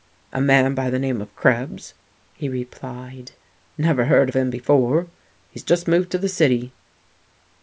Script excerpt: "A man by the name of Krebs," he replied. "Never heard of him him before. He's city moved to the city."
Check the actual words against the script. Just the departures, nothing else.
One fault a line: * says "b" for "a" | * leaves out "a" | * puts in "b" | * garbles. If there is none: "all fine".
* leaves out "him"
* says "just" for "city"